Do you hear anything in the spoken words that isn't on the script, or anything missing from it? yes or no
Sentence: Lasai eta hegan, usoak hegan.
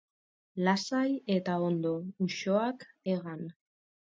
yes